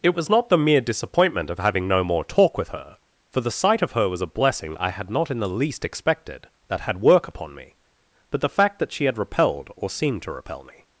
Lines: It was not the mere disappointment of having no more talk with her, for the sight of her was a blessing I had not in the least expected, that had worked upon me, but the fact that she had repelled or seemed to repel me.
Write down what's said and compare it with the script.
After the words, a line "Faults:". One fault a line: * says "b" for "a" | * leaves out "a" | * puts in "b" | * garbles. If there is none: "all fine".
It was not the mere disappointment of having no more talk with her, for the sight of her was a blessing I had not in the least expected, that had work upon me, but the fact that she had repelled or seemed to repel me.
Faults:
* says "work" for "worked"